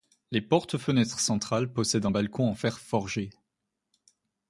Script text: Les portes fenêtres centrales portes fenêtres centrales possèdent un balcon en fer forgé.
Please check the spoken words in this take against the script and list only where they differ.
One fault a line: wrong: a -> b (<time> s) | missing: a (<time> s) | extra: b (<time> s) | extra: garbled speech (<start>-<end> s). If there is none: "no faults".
missing: portes fenêtres centrales (1.7 s)